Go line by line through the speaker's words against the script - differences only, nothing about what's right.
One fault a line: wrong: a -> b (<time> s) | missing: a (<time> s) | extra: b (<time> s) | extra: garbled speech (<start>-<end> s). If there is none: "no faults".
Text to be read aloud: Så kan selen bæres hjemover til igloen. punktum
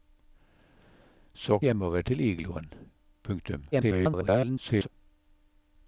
missing: kan selen bæres (1.6 s)
extra: garbled speech (3.7-4.9 s)